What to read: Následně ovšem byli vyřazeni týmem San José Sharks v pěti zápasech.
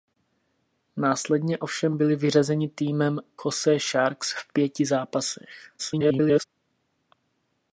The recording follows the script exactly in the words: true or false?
false